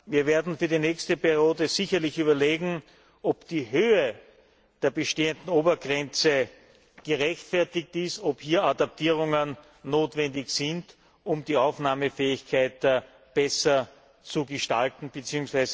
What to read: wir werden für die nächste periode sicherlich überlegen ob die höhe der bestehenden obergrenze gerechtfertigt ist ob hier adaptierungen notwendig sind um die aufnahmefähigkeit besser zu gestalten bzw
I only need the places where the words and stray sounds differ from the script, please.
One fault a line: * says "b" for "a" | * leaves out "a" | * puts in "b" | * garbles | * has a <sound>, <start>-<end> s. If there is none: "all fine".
all fine